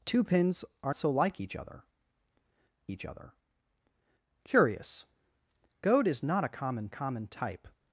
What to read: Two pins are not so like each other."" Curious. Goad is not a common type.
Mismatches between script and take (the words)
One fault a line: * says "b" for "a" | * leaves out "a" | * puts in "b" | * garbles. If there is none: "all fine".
* leaves out "not"
* puts in "each other"
* puts in "common"